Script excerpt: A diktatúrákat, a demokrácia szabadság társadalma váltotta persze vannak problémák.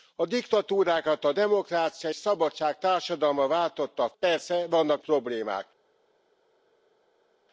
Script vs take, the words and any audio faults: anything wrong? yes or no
no